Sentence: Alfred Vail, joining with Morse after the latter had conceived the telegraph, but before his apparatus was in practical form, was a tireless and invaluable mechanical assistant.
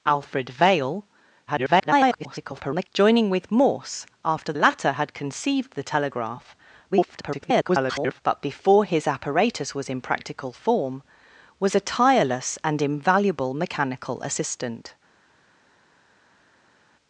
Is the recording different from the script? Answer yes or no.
yes